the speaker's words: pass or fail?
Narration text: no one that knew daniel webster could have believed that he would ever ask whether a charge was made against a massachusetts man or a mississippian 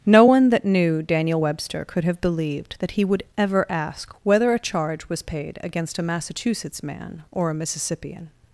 fail